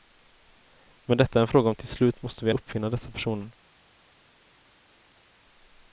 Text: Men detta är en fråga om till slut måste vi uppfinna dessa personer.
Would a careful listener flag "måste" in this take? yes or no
no